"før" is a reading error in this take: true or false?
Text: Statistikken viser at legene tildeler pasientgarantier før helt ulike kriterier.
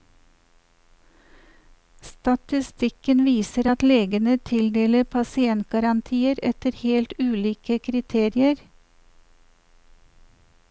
true